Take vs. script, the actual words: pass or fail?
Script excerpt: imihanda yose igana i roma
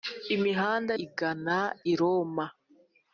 fail